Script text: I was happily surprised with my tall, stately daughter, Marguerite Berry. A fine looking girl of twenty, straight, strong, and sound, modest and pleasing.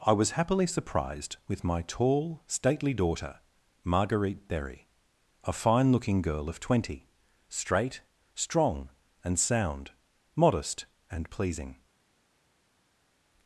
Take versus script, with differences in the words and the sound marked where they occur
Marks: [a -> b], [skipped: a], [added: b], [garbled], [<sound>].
I was happily surprised with my tall, stately daughter, Marguerite Berry. A fine looking girl of twenty, straight, strong, and sound, modest and pleasing.